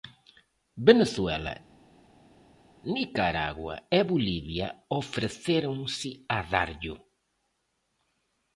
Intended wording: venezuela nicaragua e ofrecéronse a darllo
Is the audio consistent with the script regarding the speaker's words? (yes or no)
no